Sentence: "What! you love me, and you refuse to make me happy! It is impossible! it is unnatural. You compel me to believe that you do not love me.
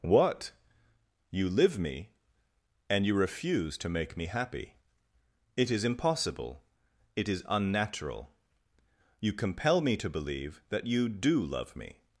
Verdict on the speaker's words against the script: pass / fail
fail